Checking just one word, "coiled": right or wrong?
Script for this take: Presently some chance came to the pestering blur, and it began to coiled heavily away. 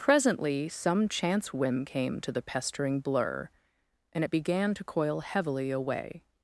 wrong